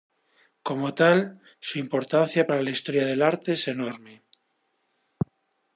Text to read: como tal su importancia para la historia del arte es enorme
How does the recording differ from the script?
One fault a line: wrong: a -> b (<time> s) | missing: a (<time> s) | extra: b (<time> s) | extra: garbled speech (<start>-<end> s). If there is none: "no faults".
no faults